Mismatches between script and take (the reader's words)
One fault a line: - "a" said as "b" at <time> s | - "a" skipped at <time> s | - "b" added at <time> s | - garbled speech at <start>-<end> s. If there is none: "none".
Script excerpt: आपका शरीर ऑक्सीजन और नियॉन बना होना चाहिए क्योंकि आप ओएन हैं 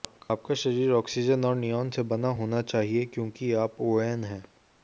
- "से" added at 1.9 s